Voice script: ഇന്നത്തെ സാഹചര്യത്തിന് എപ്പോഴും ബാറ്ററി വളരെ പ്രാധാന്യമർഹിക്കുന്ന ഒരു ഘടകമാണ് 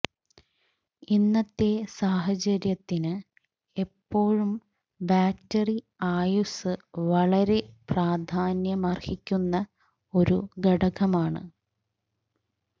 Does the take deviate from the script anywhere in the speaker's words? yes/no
yes